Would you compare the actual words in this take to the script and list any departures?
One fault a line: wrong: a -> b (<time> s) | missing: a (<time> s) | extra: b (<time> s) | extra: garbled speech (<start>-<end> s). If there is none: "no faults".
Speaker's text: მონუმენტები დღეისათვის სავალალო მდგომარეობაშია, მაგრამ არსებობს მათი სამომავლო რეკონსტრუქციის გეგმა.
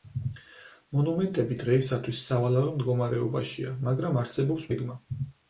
missing: მათი სამომავლო რეკონსტრუქციის (4.7 s)